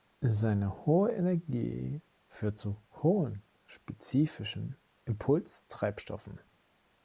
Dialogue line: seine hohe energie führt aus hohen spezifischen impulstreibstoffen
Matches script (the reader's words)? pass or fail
fail